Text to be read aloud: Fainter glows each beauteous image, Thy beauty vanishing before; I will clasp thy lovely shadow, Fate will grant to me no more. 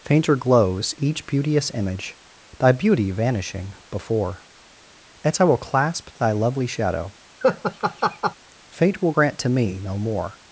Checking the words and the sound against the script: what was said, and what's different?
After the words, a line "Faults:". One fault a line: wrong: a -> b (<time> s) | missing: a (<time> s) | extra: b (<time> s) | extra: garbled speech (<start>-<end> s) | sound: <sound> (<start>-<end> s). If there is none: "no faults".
Fainter glows each beauteous image, Thy beauty vanishing before; as I will clasp thy lovely shadow, Fate will grant to me no more.
Faults:
extra: as (5.2 s)
sound: laugh (7.4-8.4 s)